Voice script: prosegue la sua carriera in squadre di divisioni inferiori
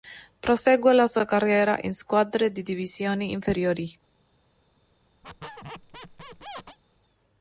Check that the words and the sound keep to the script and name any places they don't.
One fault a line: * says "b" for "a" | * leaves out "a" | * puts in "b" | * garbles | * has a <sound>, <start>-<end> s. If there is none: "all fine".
* has a squeak, 5.2-6.8 s